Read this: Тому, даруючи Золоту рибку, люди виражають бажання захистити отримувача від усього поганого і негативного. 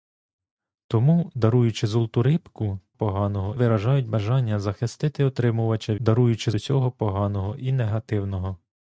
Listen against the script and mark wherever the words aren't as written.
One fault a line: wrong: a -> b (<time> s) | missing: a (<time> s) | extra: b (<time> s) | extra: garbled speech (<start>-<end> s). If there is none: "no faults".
wrong: люди -> поганого (2.9 s)
wrong: від -> даруючи (6.0 s)